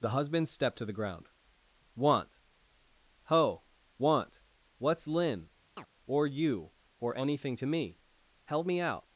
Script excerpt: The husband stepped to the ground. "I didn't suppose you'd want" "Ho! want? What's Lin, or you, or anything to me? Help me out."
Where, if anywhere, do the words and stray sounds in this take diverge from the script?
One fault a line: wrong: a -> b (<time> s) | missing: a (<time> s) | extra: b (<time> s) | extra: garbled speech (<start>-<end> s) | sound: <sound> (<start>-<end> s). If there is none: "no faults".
missing: I didn't suppose you'd (1.3 s)
sound: chirp (5.8-5.9 s)